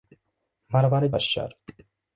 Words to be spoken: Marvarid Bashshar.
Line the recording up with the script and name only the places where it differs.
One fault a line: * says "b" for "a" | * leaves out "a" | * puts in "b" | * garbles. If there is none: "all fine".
all fine